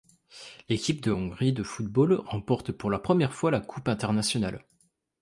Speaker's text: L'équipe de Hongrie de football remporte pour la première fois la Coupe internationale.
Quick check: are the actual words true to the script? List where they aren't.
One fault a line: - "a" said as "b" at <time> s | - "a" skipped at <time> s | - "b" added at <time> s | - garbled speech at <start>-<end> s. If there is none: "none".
none